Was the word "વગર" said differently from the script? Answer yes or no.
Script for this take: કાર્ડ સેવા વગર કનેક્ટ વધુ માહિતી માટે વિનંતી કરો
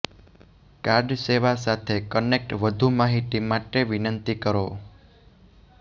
yes